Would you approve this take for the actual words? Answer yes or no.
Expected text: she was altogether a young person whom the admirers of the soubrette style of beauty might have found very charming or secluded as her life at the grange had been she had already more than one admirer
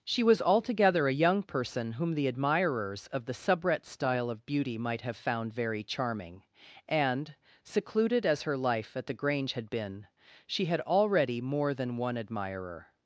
no